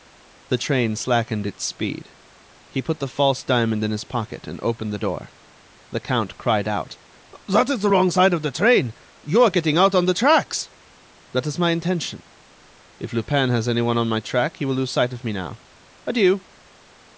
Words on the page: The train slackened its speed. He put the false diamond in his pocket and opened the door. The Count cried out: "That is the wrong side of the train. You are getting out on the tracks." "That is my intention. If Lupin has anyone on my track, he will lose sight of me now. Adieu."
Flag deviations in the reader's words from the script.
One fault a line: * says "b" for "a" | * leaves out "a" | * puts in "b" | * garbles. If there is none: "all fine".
all fine